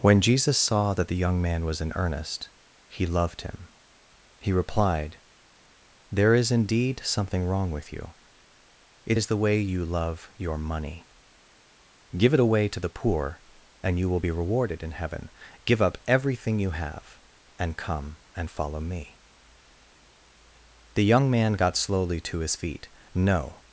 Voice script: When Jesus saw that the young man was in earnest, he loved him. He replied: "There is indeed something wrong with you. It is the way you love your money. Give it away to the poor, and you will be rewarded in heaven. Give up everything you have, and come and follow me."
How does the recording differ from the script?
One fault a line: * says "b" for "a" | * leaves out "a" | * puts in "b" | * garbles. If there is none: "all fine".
* puts in "The young man got slowly to his feet No"